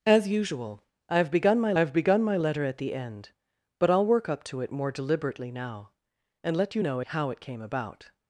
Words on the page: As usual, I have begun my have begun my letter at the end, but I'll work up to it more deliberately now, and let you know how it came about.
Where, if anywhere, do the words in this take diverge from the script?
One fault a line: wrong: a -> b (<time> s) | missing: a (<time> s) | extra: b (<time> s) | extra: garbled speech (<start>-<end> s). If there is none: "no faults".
no faults